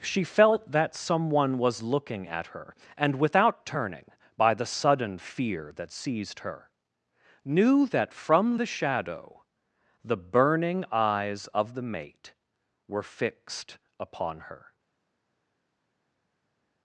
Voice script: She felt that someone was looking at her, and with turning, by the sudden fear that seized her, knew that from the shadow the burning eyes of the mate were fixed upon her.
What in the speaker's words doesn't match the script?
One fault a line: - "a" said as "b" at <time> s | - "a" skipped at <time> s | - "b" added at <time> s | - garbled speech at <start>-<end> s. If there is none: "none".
- "with" said as "without" at 3.2 s